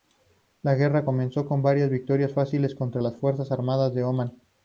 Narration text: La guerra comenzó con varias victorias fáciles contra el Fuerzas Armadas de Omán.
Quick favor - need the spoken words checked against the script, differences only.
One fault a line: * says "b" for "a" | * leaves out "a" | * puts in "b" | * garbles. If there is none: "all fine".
* says "las" for "el"